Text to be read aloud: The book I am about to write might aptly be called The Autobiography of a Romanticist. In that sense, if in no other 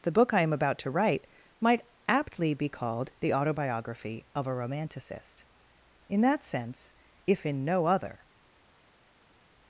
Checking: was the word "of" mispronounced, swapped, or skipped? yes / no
no